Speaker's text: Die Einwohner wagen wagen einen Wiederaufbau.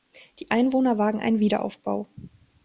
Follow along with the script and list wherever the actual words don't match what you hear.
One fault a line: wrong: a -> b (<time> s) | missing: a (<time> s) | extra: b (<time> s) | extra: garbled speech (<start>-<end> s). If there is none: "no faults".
missing: wagen (1.2 s)